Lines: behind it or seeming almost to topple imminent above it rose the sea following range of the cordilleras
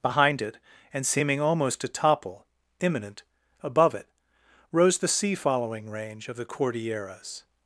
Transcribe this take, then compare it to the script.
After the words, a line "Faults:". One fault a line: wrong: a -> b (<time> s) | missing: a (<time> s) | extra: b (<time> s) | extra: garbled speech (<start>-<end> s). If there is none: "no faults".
behind it and seeming almost to topple imminent above it rose the sea following range of the cordilleras
Faults:
wrong: or -> and (0.9 s)